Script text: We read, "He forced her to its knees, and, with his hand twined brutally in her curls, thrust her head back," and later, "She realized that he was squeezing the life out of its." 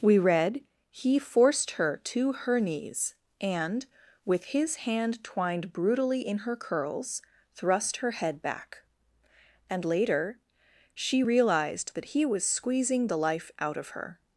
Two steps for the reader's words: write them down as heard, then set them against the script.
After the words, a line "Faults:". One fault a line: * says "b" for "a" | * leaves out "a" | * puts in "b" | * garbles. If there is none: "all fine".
We read, "He forced her to her knees, and, with his hand twined brutally in her curls, thrust her head back," and later, "She realized that he was squeezing the life out of her."
Faults:
* says "her" for "its"
* says "her" for "its"